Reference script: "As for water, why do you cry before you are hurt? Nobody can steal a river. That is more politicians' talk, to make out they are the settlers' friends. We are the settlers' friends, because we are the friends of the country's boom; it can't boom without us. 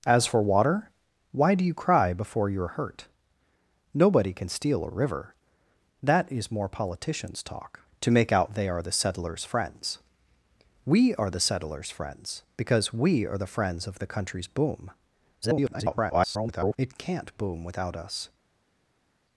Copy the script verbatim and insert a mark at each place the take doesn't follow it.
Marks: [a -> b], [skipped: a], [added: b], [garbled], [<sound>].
"As for water, why do you cry before you are hurt? Nobody can steal a river. That is more politicians' talk, to make out they are the settlers' friends. We are the settlers' friends, because we are the friends of the country's boom; [garbled] it can't boom without us.